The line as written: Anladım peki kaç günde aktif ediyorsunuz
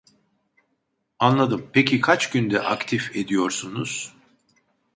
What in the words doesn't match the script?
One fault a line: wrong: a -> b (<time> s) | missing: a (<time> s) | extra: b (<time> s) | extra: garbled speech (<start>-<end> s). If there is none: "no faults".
no faults